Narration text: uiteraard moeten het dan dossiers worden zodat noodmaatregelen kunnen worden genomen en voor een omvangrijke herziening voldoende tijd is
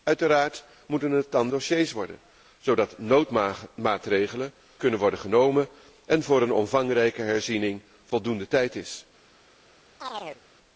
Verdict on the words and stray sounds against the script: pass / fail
fail